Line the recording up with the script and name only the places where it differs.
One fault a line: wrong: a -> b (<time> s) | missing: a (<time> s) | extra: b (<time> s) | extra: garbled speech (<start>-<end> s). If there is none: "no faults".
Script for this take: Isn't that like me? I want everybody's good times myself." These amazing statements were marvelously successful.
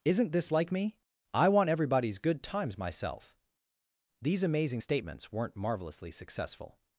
wrong: that -> this (0.3 s)
wrong: were -> weren't (5.3 s)